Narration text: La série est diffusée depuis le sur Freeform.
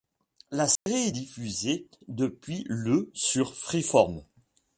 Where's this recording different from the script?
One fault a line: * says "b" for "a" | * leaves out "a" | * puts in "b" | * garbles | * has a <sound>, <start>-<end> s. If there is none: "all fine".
* has a dropout, 0.8-0.9 s